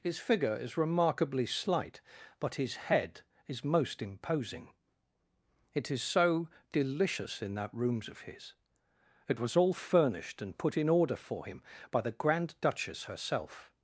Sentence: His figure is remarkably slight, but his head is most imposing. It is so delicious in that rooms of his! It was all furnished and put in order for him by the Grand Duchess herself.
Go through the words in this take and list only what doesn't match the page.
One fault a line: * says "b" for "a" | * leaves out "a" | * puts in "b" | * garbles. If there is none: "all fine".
all fine